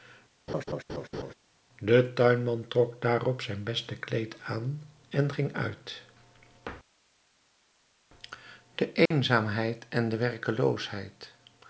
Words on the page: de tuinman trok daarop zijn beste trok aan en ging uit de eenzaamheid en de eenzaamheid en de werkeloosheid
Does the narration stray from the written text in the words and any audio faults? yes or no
yes